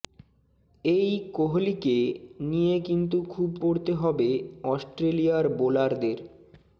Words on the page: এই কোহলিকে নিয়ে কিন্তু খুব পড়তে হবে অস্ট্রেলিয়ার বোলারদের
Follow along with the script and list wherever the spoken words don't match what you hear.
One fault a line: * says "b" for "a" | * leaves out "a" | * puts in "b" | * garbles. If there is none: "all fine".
all fine